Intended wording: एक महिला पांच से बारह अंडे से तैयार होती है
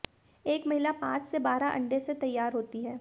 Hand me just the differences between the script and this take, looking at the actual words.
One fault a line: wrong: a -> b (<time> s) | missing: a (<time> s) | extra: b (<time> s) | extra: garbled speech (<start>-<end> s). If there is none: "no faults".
no faults